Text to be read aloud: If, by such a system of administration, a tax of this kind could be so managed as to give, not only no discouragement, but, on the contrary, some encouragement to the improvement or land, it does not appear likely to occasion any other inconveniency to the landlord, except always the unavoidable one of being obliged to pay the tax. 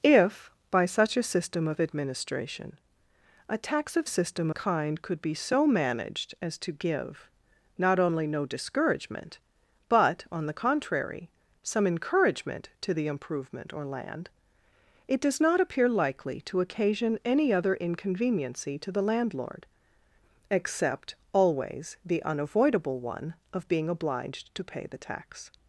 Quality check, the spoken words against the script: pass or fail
fail